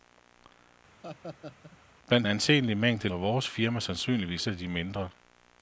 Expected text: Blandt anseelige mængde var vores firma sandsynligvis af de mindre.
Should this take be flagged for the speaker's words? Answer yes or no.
no